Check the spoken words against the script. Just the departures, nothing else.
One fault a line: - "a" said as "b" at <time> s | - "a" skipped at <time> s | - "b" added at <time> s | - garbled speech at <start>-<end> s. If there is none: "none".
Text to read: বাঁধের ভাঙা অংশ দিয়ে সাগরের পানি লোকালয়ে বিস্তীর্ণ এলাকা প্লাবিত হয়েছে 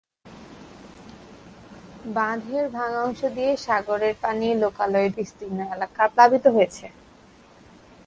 none